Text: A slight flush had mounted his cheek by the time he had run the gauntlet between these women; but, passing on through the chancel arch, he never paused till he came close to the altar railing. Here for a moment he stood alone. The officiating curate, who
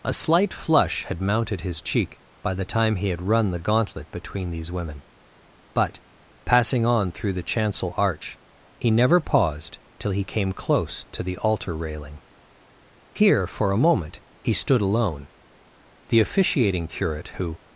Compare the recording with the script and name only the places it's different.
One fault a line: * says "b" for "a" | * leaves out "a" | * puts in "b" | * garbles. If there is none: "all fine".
all fine